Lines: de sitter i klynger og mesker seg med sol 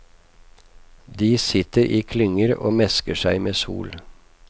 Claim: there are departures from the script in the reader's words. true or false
false